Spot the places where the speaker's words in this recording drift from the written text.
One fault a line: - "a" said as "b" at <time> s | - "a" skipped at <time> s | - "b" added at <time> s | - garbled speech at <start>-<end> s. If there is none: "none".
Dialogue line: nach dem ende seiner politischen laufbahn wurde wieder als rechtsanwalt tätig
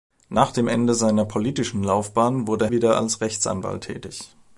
none